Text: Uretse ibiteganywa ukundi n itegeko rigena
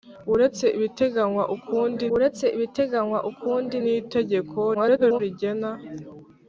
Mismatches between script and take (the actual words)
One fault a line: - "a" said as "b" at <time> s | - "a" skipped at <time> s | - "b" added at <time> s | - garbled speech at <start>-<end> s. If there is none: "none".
- "uretse ibiteganywa ukundi" added at 2.1 s
- garbled speech at 4.7-5.2 s